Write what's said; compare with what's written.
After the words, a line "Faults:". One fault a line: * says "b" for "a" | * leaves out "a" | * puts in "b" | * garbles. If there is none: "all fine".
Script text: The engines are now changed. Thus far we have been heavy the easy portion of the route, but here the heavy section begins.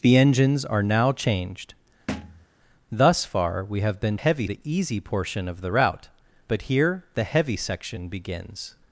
The engines are now changed. Thus far we have been heavy the easy portion of the route, but here the heavy section begins.
Faults:
all fine